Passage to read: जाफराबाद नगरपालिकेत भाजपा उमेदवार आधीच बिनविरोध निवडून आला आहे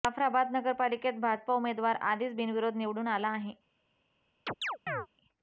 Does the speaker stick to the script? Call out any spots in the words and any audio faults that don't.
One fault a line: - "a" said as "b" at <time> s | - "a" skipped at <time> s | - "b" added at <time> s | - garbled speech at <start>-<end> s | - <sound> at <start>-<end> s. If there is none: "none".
- chirp at 4.5-5.1 s